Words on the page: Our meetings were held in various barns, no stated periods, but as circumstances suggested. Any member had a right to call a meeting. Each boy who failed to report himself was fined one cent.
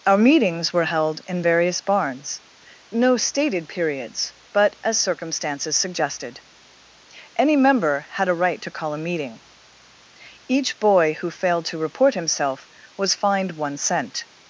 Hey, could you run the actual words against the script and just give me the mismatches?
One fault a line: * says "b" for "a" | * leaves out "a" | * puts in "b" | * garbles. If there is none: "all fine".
all fine